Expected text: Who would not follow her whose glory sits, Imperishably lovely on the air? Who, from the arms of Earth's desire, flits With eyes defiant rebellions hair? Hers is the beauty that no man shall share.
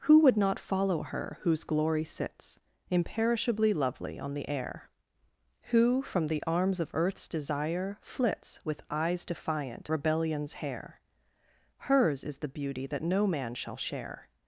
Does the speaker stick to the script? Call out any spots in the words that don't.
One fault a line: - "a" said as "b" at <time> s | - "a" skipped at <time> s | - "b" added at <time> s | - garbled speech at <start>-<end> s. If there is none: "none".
none